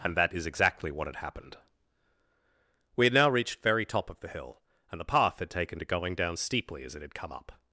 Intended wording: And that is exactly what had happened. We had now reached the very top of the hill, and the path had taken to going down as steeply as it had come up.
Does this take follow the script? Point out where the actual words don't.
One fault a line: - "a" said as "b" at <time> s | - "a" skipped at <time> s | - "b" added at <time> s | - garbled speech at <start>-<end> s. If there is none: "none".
- "the" skipped at 3.6 s
- "as" skipped at 6.4 s